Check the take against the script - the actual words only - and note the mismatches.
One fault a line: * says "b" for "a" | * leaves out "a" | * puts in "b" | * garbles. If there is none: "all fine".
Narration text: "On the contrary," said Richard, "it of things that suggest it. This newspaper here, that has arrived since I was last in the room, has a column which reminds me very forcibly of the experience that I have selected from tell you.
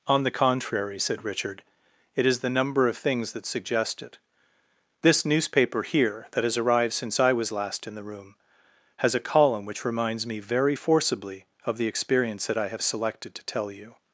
* puts in "is the number"
* says "to" for "from"